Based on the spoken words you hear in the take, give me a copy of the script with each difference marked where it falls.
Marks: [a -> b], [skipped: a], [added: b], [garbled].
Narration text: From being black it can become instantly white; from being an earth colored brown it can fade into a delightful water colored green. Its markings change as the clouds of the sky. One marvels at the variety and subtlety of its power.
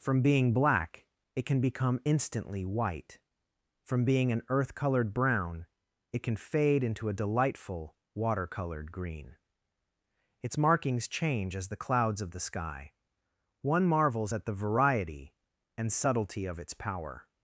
From being black it can become instantly white; from being an earth colored brown it can fade into a delightful water colored green. Its markings change as the clouds of the sky. One marvels at the variety and subtlety of its power.